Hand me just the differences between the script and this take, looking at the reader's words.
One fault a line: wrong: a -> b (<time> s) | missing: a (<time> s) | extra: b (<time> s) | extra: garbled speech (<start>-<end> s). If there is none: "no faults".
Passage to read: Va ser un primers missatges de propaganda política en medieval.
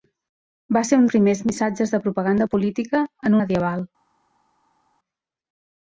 no faults